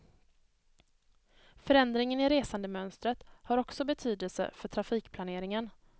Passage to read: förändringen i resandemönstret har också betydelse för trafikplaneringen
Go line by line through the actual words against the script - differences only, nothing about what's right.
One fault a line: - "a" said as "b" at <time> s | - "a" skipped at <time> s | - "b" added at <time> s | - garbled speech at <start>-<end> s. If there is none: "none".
none